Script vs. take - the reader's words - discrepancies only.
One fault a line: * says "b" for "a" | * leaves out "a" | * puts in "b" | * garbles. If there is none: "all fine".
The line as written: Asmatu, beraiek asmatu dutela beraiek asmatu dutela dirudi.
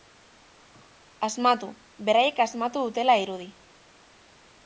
* leaves out "beraiek asmatu dutela"